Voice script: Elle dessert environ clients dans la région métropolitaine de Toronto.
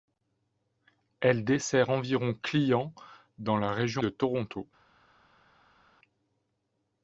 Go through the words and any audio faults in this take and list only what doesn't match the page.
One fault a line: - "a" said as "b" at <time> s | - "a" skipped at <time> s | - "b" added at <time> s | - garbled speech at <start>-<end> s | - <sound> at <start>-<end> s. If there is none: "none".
- "métropolitaine" skipped at 4.0 s